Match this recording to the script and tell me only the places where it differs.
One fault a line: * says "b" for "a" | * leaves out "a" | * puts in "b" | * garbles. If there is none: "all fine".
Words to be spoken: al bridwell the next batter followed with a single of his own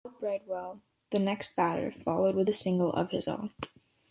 all fine